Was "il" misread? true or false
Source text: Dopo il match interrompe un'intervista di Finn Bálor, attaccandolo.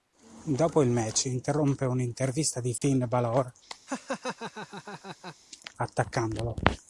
false